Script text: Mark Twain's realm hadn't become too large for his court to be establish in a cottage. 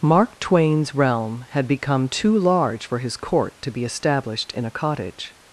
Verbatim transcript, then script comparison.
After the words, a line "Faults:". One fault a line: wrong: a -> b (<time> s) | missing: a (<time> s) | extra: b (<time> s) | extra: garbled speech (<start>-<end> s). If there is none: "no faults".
Mark Twain's realm had become too large for his court to be established in a cottage.
Faults:
wrong: hadn't -> had (1.5 s)
wrong: establish -> established (3.8 s)